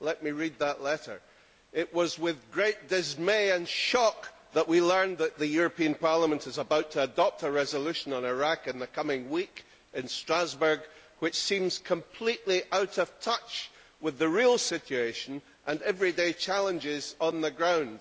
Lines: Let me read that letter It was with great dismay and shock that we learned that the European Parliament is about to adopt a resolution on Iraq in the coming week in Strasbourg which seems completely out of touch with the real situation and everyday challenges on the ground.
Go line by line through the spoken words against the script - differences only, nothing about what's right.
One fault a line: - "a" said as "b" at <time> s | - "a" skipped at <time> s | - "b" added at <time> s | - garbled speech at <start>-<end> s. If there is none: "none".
none